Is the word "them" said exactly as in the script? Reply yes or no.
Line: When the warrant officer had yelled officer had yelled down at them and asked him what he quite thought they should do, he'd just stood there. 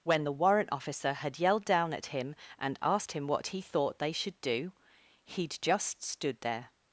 no